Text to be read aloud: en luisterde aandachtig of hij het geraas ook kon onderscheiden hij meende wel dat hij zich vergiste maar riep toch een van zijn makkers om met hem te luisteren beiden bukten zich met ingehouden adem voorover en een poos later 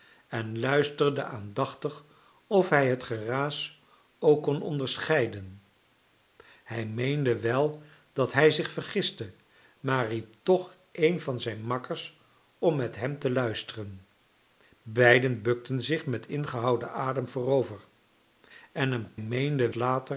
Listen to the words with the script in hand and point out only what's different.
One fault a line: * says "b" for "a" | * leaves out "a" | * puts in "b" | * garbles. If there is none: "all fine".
* says "meende" for "poos"